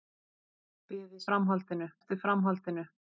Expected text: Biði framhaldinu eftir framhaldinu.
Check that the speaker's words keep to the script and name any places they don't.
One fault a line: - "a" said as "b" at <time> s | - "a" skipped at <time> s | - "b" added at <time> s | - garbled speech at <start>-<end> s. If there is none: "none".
none